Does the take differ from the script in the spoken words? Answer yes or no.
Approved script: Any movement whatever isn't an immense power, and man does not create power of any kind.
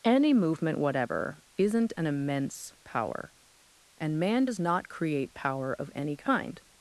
no